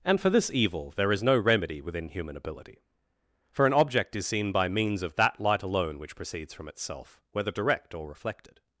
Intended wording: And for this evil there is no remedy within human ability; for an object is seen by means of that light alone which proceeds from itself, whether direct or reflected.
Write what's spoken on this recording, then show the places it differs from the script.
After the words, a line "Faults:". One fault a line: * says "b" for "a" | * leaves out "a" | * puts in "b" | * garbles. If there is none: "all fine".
And for this evil there is no remedy within human ability; for an object is seen by means of that light alone which proceeds from itself, whether direct or reflected.
Faults:
all fine